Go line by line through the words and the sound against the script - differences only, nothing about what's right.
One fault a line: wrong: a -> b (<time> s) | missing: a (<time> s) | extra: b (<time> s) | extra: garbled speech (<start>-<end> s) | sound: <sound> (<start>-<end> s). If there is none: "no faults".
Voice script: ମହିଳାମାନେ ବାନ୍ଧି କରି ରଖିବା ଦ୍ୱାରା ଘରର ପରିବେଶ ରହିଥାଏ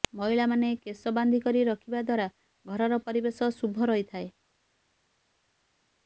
extra: କେଶ (0.8 s)
extra: ଶୁଭ (3.6 s)